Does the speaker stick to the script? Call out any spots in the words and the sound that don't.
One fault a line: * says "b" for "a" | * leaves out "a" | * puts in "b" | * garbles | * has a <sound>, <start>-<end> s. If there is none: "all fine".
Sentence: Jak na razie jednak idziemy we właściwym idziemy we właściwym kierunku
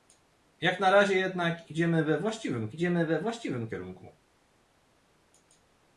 all fine